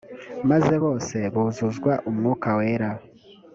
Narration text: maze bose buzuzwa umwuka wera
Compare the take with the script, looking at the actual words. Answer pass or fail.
pass